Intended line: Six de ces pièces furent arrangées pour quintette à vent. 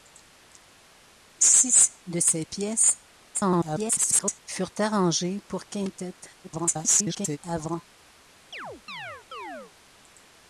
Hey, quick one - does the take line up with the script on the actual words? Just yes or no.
no